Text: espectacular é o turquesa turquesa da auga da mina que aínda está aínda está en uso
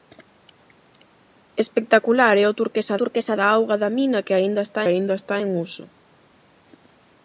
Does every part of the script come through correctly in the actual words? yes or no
yes